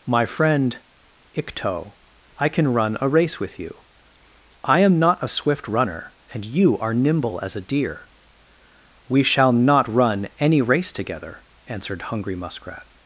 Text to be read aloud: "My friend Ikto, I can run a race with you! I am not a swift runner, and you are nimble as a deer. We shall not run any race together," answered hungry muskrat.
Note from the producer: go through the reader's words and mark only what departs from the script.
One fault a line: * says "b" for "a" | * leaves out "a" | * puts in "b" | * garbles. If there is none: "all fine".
all fine